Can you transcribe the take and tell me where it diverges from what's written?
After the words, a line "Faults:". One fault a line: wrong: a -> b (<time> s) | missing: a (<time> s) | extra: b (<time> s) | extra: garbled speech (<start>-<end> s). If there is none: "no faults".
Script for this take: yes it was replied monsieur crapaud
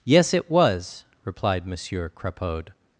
yes it was replied monsieur crapaud
Faults:
no faults